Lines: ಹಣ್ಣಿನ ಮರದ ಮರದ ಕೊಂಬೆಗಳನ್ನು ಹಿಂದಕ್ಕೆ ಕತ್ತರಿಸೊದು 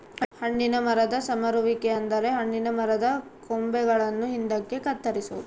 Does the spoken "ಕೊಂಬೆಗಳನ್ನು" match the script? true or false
true